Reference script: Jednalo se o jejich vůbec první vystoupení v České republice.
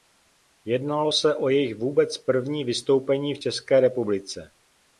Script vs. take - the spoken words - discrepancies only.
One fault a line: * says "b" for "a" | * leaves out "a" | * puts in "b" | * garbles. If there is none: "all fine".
all fine